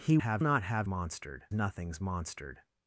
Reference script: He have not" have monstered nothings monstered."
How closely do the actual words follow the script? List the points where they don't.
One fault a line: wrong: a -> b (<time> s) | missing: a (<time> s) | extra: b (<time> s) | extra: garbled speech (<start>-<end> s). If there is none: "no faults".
no faults